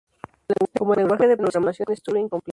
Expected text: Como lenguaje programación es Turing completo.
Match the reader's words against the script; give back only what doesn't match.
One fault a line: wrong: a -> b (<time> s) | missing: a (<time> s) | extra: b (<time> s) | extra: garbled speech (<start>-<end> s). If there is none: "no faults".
extra: de (1.3 s)